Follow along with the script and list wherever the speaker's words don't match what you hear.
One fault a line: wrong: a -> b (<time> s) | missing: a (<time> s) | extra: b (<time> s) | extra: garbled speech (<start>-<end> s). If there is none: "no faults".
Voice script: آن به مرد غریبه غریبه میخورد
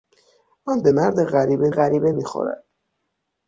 no faults